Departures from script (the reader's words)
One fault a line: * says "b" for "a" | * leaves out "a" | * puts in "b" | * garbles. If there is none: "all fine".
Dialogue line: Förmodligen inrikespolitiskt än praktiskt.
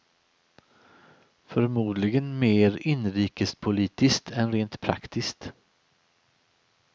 * puts in "mer"
* puts in "rent"